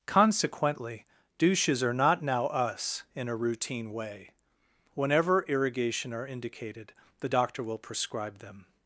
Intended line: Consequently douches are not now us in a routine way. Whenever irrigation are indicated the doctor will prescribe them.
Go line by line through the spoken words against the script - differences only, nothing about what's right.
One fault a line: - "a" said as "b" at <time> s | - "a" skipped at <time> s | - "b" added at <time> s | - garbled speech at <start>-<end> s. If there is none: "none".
none